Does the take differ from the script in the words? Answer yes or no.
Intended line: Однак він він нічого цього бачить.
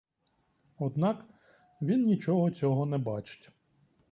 yes